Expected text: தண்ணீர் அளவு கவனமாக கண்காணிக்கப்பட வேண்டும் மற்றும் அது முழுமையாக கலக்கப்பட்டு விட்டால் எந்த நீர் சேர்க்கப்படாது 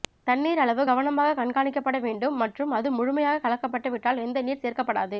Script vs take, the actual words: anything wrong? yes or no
no